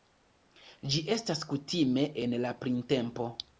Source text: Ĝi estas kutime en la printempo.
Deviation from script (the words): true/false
false